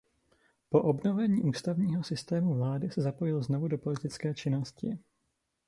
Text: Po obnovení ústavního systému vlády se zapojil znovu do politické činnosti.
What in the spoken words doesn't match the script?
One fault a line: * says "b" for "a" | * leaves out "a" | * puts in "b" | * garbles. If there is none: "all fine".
all fine